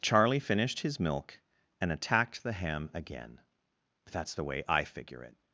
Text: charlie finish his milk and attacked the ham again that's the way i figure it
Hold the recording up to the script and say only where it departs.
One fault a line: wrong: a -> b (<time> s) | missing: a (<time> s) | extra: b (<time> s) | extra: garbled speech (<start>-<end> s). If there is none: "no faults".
wrong: finish -> finished (0.4 s)